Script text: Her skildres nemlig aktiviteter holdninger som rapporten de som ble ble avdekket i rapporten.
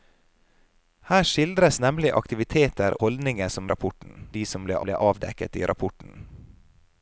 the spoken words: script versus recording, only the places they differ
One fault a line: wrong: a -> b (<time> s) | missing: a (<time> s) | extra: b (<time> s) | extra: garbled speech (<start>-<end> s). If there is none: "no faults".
no faults